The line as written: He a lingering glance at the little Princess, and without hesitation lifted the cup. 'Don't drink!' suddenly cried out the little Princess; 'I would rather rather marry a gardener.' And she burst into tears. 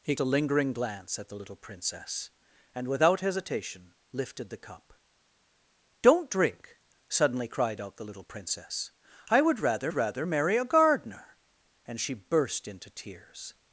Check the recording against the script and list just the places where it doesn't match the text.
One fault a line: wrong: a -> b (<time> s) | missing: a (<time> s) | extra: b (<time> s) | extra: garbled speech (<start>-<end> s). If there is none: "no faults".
no faults